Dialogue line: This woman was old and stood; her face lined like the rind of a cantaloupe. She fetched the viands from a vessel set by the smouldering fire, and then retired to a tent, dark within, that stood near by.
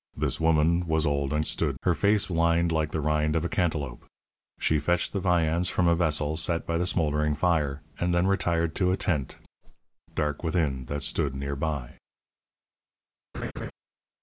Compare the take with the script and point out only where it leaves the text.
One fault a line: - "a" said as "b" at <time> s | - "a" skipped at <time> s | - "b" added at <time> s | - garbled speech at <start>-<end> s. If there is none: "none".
none